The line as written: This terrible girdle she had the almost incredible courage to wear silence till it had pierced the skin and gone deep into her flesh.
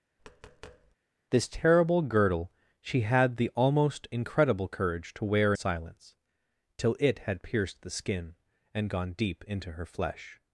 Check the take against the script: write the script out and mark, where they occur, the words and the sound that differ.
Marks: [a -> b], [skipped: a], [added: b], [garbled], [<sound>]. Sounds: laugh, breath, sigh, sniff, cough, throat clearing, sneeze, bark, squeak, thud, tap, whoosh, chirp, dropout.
[tap] This terrible girdle she had the almost incredible courage to wear silence till it had pierced the skin and gone deep into her flesh.